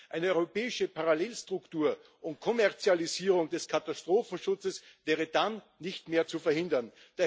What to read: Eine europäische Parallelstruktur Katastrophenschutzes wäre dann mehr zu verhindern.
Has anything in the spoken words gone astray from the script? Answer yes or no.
yes